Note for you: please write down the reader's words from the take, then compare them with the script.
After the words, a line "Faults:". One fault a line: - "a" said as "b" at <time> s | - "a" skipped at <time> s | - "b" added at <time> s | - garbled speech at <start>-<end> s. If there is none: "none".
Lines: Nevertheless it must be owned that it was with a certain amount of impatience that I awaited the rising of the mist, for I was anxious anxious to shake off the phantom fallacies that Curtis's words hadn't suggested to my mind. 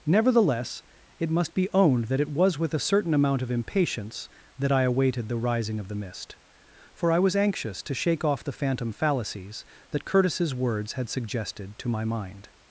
Nevertheless it must be owned that it was with a certain amount of impatience that I awaited the rising of the mist, for I was anxious to shake off the phantom fallacies that Curtis's words had suggested to my mind.
Faults:
- "anxious" skipped at 7.8 s
- "hadn't" said as "had" at 10.9 s